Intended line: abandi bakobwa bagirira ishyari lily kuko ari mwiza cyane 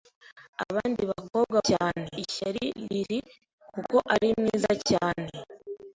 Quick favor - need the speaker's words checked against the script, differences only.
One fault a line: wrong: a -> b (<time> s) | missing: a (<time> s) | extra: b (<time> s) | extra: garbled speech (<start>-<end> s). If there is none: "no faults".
wrong: bagirira -> cyane (1.7 s)